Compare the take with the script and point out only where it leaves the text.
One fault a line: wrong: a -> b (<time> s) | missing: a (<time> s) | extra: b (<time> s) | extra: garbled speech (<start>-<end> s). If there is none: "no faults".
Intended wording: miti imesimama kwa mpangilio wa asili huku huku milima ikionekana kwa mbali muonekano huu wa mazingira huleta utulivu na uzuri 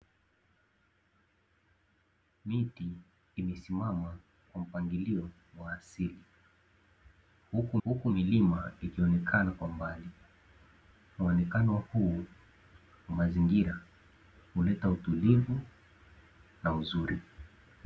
no faults